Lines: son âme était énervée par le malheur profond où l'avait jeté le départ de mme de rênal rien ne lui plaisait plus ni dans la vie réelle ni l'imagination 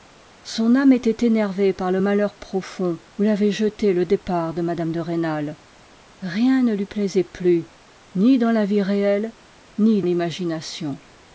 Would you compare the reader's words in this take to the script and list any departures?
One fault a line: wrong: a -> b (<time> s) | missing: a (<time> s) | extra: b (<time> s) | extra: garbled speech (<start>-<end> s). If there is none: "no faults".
no faults